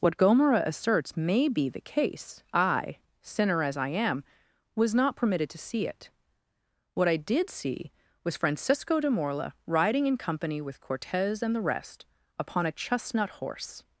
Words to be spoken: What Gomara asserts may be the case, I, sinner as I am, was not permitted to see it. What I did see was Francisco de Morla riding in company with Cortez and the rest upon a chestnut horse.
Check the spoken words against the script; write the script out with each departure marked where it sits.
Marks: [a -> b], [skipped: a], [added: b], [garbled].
What Gomara asserts may be the case, I, sinner as I am, was not permitted to see it. What I did see was Francisco de Morla riding in company with Cortez and the rest upon a chestnut horse.